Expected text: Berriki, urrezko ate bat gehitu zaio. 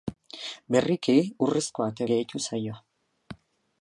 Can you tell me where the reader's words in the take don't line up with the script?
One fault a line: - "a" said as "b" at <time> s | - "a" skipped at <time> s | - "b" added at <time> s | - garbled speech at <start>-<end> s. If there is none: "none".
- "bat" skipped at 2.1 s